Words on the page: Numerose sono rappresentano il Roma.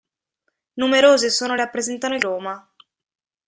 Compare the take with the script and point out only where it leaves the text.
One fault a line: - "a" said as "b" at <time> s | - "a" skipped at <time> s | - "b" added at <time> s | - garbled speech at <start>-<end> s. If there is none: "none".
none